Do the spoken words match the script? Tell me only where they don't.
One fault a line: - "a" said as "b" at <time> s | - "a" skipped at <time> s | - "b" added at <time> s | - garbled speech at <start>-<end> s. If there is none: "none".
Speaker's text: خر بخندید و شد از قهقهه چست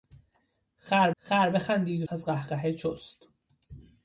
- "خر" added at 1.2 s
- "شد" skipped at 2.1 s